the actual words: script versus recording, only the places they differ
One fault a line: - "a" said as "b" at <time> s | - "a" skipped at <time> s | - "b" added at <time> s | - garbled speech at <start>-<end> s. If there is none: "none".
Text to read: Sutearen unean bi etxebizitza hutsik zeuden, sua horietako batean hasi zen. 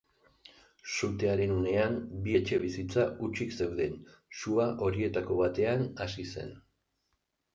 none